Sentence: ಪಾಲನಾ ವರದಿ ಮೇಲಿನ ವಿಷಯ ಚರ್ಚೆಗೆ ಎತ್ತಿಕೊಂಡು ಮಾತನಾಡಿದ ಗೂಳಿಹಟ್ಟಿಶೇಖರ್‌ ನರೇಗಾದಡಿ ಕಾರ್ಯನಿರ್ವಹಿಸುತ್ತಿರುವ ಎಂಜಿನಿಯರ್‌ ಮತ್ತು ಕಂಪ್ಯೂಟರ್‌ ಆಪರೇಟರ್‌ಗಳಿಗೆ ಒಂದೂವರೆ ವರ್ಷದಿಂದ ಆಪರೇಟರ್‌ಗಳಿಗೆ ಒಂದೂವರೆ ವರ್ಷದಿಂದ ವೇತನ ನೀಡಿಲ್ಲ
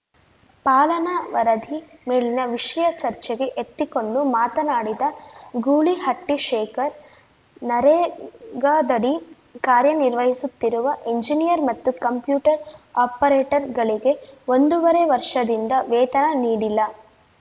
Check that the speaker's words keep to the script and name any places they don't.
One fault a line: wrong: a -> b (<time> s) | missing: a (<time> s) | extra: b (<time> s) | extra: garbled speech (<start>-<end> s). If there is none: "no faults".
missing: ಆಪರೇಟರ್‌ಗಳಿಗೆ ಒಂದೂವರೆ ವರ್ಷದಿಂದ (15.7 s)